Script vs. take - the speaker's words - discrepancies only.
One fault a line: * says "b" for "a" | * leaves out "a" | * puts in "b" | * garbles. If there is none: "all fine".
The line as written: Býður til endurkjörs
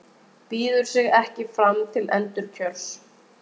* puts in "sig ekki fram"